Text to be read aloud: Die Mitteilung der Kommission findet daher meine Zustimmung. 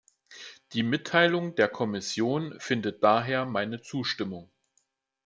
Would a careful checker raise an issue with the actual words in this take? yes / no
no